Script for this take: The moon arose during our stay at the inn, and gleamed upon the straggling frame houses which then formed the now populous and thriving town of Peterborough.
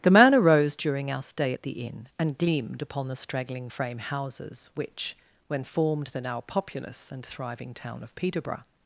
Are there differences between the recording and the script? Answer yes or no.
yes